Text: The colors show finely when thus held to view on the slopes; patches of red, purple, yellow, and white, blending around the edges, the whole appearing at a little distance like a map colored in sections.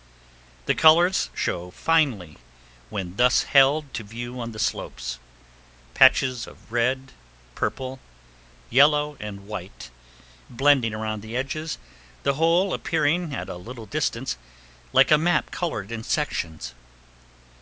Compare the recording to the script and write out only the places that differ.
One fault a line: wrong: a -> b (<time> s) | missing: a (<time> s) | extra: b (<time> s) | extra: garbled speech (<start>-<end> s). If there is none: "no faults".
no faults